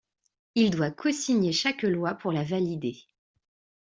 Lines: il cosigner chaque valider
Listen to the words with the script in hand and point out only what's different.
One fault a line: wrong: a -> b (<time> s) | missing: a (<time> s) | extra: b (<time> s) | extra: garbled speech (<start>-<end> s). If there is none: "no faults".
extra: doit (0.7 s)
extra: loi pour la (1.8 s)